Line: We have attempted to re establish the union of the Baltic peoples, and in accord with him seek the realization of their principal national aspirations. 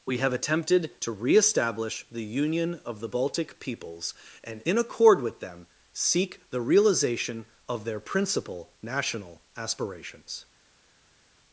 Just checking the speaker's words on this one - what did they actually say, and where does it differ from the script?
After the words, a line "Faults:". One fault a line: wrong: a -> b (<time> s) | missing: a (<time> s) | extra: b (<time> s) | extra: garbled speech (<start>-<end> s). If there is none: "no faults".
We have attempted to re establish the union of the Baltic peoples, and in accord with them seek the realization of their principal national aspirations.
Faults:
wrong: him -> them (5.4 s)